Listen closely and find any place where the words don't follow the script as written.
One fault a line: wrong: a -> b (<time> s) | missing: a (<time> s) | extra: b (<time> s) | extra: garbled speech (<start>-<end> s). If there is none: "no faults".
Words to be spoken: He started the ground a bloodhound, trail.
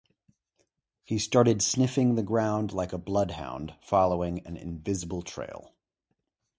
extra: sniffing (1.6 s)
extra: like (2.7 s)
extra: following an invisible (3.8 s)